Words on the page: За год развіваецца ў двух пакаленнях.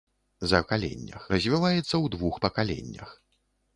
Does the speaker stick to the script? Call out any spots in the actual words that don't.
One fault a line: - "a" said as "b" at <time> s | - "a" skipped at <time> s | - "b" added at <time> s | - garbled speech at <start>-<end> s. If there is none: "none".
- "год" said as "пакаленнях" at 0.6 s